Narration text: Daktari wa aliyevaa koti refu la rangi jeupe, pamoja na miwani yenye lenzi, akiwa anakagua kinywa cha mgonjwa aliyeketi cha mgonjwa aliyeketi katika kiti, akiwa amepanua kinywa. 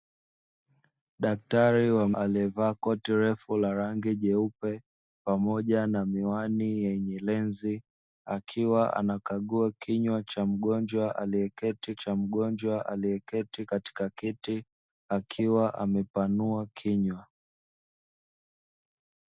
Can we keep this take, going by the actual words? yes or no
yes